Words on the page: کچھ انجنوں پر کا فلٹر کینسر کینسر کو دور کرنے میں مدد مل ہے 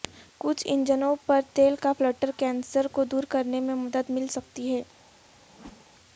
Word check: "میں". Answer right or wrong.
right